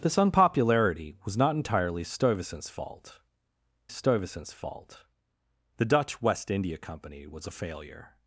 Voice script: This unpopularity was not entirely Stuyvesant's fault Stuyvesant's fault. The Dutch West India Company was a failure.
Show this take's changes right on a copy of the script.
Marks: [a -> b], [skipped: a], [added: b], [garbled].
This unpopularity was not entirely Stuyvesant's fault Stuyvesant's fault. The Dutch West India Company was a failure.